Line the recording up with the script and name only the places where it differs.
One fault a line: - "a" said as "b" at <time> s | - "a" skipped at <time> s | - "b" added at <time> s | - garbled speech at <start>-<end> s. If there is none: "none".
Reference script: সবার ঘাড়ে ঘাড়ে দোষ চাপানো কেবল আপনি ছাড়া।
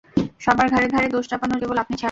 none